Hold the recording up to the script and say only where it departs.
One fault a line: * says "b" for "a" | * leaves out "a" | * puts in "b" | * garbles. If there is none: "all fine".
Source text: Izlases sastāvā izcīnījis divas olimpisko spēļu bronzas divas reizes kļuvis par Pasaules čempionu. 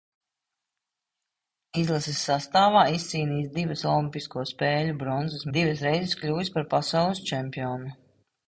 all fine